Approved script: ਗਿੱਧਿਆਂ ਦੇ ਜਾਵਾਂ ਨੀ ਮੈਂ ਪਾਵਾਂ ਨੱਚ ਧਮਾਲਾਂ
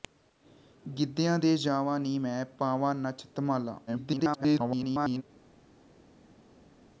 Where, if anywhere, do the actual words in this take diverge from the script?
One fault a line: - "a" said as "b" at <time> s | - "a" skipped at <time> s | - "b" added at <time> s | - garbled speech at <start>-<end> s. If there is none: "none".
- garbled speech at 3.9-5.2 s